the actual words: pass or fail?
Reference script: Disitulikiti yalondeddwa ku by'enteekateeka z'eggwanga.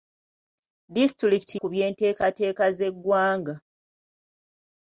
fail